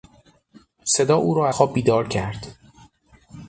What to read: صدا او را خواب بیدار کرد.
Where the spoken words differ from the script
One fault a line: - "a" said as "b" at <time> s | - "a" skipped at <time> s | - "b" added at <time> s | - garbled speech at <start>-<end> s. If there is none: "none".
none